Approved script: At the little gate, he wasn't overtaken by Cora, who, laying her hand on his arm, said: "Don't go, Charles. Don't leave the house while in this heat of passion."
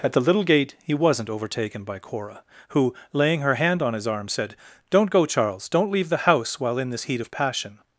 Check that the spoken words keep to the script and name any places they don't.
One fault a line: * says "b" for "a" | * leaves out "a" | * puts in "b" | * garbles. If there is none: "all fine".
all fine